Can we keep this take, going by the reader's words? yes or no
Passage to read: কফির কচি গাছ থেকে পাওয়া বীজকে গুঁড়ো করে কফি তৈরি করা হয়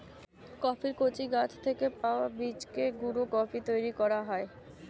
no